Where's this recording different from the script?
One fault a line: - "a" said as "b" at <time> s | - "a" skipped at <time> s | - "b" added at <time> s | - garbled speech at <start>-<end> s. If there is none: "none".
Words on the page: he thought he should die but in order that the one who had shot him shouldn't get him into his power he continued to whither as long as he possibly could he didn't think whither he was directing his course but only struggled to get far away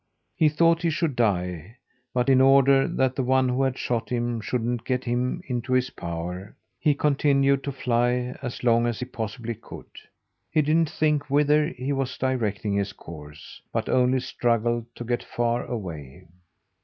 - "whither" said as "fly" at 7.7 s